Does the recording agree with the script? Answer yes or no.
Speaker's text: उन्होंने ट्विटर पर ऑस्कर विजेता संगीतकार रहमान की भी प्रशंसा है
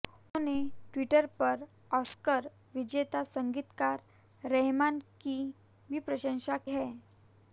yes